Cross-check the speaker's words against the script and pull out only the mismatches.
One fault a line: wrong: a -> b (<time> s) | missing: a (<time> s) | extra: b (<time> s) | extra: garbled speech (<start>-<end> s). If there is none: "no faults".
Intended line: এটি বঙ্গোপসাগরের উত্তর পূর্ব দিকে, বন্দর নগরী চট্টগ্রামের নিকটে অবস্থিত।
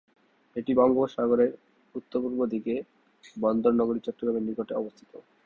no faults